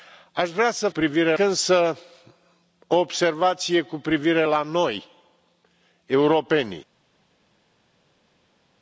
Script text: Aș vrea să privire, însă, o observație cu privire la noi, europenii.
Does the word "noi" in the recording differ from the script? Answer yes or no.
no